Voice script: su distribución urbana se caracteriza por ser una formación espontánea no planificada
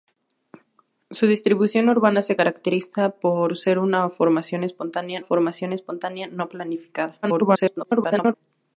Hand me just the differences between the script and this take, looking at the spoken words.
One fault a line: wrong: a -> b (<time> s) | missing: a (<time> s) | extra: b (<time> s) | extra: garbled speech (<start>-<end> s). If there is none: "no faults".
extra: formación espontánea (5.2 s)
extra: garbled speech (7.2-8.3 s)